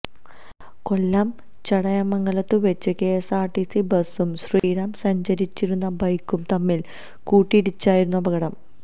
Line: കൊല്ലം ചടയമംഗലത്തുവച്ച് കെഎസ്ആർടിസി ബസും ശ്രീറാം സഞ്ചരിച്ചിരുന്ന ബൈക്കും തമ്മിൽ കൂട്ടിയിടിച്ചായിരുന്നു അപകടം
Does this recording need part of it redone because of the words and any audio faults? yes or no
yes